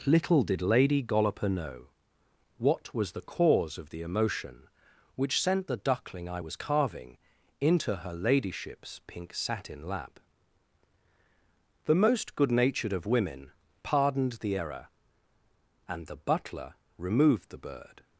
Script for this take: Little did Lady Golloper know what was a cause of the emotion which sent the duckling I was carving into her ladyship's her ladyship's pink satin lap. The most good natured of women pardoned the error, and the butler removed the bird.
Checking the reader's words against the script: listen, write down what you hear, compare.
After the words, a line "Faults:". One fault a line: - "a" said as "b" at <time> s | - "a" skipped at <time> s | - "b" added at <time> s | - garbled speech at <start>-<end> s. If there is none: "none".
Little did Lady Golloper know what was the cause of the emotion which sent the duckling I was carving into her ladyship's pink satin lap. The most good natured of women pardoned the error, and the butler removed the bird.
Faults:
- "a" said as "the" at 3.1 s
- "her ladyship's" skipped at 9.0 s